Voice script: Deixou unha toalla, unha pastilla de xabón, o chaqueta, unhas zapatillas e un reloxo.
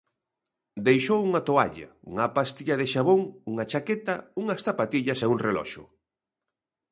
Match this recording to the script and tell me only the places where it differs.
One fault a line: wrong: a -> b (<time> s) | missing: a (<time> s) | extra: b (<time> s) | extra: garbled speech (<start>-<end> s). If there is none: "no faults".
wrong: o -> unha (3.5 s)